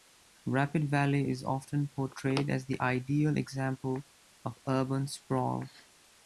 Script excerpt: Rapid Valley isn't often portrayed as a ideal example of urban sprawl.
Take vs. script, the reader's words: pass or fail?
fail